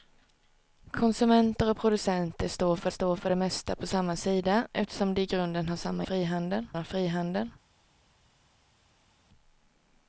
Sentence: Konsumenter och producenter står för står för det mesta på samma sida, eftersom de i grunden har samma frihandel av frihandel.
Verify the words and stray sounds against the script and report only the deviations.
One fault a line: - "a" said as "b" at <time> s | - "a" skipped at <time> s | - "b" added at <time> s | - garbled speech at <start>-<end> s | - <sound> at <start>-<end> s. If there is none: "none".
none